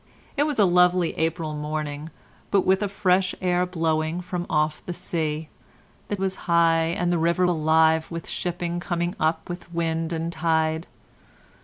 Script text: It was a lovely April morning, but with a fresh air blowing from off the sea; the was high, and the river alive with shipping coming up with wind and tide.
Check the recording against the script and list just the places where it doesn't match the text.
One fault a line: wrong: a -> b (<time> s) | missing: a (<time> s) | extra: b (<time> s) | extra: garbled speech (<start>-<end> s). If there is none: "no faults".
no faults